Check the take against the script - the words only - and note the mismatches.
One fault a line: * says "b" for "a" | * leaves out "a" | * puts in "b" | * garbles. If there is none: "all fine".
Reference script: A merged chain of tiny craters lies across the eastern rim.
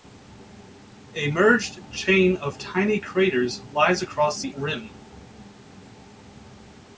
* leaves out "eastern"